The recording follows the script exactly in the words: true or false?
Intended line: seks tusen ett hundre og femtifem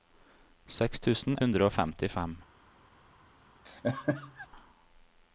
false